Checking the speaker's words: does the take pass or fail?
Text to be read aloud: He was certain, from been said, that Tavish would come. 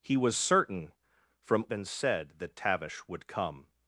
pass